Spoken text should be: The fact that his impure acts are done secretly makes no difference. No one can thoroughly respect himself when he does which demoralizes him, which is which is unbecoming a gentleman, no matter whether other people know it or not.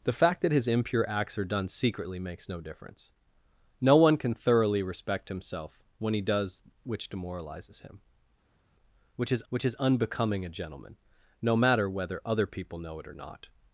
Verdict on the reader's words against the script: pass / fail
pass